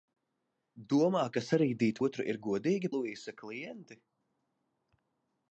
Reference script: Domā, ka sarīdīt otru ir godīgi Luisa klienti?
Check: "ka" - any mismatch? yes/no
no